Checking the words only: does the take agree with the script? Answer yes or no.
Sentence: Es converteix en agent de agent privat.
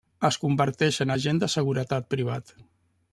no